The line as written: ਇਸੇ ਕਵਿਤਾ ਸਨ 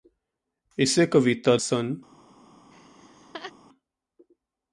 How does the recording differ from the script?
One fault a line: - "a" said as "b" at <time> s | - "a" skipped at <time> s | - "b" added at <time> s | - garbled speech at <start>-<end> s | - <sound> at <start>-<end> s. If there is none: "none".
- laugh at 2.7-3.5 s